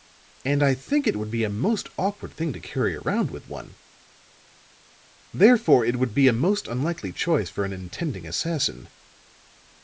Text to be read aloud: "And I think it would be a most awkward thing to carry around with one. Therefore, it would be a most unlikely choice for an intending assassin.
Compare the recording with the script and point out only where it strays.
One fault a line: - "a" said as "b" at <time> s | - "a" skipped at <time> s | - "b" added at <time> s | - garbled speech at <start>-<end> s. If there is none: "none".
none